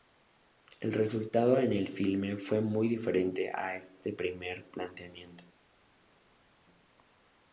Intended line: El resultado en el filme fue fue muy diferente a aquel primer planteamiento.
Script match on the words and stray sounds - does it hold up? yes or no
no